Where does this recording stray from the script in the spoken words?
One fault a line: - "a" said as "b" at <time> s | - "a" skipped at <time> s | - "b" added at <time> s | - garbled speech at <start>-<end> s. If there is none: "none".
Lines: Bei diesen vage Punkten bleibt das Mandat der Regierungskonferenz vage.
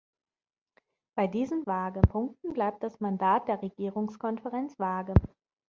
none